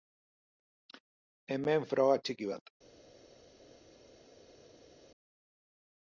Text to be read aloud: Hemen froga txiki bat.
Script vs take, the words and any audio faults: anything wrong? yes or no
no